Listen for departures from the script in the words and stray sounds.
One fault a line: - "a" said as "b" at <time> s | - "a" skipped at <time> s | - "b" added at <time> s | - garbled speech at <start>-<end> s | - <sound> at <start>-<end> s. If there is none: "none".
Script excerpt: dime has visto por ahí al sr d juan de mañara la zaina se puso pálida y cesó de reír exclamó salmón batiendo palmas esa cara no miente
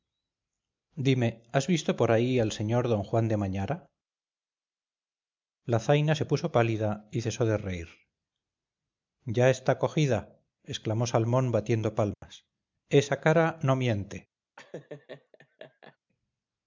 - "ya está cogida" added at 9.3 s
- dropout at 12.1-12.2 s
- laugh at 14.6-16.0 s